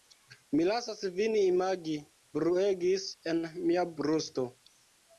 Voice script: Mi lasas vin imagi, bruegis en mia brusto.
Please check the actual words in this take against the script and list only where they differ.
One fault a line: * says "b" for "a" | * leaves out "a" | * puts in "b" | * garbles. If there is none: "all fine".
all fine